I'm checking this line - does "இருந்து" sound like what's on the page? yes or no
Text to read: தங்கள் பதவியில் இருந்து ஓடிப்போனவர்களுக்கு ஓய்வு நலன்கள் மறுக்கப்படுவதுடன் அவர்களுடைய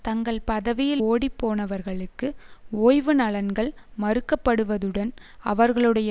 no